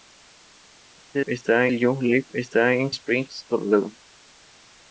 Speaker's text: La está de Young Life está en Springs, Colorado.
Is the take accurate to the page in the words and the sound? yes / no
yes